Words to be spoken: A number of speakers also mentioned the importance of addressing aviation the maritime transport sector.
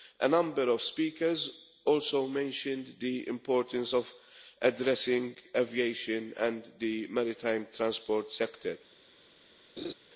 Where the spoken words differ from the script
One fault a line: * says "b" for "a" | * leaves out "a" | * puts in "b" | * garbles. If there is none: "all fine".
* puts in "and"